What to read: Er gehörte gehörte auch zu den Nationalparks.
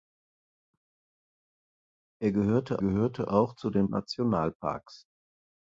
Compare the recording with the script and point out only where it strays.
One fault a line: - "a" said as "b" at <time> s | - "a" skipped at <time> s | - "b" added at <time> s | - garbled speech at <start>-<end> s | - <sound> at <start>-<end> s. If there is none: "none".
none